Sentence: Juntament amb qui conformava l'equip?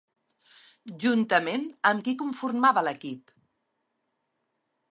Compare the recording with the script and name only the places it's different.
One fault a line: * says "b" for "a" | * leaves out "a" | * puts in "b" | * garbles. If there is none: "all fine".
all fine